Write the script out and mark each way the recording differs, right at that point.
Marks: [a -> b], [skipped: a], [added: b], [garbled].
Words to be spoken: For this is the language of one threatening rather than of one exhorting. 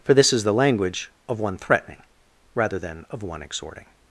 For this is the language of one threatening rather than of one exhorting.